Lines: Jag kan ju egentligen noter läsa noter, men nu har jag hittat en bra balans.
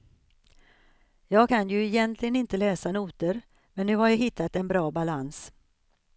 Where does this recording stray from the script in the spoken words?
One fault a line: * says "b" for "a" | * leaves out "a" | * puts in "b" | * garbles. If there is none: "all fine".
* says "inte" for "noter"